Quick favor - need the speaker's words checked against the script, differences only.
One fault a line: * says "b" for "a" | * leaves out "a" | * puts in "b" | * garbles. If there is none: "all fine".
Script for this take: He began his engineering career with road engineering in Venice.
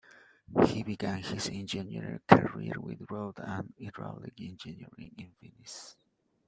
* puts in "and hydraulic"